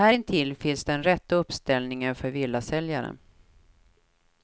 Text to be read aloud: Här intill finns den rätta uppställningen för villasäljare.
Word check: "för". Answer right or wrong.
right